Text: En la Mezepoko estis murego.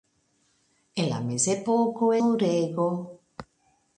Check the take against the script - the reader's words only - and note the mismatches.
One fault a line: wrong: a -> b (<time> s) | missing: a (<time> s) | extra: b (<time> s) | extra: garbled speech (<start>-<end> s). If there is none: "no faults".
missing: estis (2.1 s)